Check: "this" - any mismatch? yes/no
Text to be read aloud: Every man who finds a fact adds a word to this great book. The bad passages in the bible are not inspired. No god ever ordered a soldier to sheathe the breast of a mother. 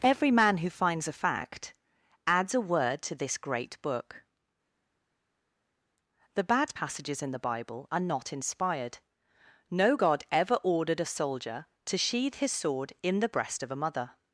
no